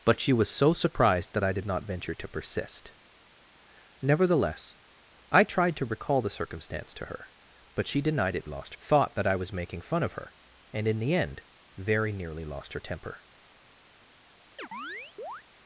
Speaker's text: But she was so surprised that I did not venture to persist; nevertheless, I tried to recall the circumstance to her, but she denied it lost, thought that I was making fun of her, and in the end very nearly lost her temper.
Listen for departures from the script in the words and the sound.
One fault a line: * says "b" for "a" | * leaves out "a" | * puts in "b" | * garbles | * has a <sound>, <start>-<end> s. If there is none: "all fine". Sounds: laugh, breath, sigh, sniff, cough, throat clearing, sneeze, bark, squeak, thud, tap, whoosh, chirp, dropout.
* has a chirp, 14.6-15.4 s